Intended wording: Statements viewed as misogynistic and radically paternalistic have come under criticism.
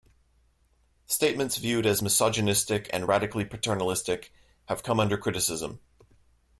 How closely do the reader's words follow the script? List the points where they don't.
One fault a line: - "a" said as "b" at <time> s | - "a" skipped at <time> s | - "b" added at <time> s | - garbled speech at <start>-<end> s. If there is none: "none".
none